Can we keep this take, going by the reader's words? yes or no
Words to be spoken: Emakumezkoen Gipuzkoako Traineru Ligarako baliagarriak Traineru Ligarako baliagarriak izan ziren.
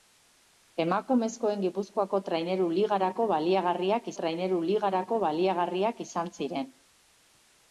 yes